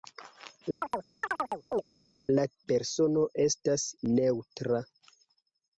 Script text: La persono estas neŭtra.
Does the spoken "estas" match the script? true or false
true